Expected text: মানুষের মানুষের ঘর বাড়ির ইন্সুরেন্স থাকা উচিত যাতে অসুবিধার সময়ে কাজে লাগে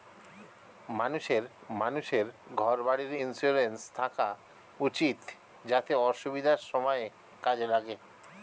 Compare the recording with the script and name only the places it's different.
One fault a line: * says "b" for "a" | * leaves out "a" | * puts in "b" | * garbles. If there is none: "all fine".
all fine